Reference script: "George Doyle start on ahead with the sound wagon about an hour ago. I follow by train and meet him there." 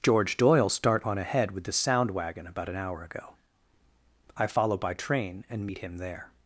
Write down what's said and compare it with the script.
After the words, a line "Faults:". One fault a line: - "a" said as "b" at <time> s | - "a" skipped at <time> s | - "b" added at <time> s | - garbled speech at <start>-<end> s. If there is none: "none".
"George Doyle start on ahead with the sound wagon about an hour ago. I follow by train and meet him there."
Faults:
none